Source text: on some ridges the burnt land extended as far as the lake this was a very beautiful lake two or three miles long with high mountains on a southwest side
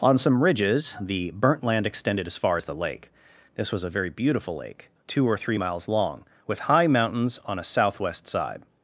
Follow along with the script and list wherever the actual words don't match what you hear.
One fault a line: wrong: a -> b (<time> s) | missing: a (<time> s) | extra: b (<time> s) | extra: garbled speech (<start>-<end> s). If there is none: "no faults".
no faults